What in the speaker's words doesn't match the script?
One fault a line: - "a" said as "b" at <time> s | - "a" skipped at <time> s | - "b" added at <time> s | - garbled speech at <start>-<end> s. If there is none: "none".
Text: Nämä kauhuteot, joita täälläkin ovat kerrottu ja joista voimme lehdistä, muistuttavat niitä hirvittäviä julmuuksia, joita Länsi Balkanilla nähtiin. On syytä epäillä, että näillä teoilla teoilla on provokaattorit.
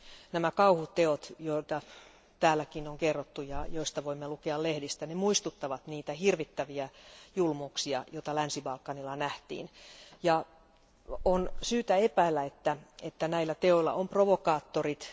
- "ovat" said as "on" at 2.9 s
- "lukea" added at 4.3 s
- "teoilla" skipped at 13.9 s